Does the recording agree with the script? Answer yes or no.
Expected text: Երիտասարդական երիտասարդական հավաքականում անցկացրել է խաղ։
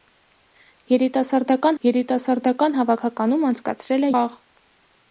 yes